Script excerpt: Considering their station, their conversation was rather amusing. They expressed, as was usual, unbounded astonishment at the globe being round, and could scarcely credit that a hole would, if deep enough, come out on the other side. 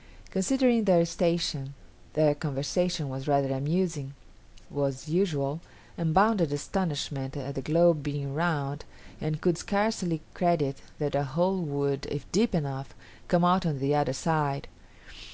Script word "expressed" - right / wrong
wrong